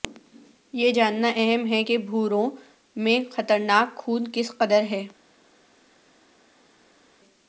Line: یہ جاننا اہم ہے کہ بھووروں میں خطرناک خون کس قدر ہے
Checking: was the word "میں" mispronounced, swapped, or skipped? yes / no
no